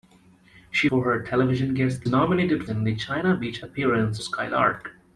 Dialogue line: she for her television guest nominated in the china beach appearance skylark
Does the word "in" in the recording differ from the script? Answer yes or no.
no